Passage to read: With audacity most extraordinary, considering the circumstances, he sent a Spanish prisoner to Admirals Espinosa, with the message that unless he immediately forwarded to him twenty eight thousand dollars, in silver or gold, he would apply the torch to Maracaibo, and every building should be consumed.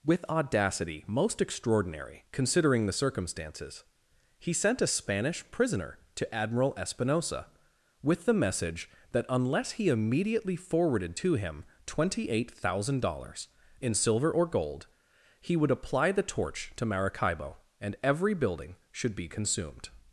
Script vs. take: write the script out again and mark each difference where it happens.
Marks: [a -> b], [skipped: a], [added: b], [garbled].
With audacity most extraordinary, considering the circumstances, he sent a Spanish prisoner to [Admirals -> Admiral] Espinosa, with the message that unless he immediately forwarded to him twenty eight thousand dollars, in silver or gold, he would apply the torch to Maracaibo, and every building should be consumed.